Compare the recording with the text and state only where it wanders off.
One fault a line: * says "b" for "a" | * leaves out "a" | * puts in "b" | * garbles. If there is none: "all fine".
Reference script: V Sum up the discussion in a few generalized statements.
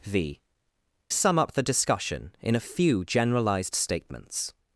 all fine